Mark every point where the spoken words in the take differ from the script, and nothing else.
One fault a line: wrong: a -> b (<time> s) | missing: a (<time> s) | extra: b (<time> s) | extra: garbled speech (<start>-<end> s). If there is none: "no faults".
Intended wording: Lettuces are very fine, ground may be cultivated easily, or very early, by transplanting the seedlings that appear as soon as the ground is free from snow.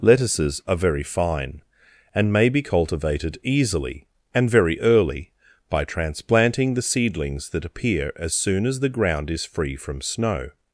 wrong: ground -> and (2.1 s)
wrong: or -> and (4.3 s)